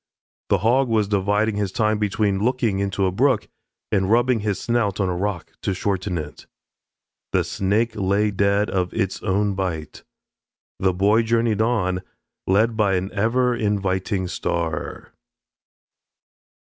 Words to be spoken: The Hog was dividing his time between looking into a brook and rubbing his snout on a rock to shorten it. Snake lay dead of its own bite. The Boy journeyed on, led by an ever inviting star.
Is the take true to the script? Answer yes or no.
no